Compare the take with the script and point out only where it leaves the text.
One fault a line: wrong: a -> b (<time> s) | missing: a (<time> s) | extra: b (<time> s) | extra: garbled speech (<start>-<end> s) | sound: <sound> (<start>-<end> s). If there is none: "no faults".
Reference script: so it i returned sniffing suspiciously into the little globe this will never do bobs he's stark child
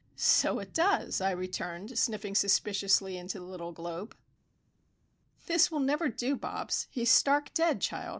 extra: does (0.7 s)
extra: dead (7.5 s)